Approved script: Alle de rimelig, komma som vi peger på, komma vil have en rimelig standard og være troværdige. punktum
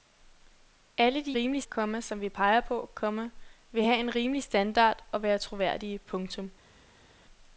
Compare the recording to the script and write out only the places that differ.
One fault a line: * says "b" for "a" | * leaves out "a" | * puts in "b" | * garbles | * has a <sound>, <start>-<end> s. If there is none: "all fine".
all fine